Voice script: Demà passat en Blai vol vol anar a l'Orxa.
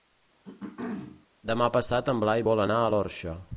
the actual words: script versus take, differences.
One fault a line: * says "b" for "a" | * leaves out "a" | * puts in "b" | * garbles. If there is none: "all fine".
* leaves out "vol"